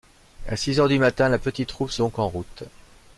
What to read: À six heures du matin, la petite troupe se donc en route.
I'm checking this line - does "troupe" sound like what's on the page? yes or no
yes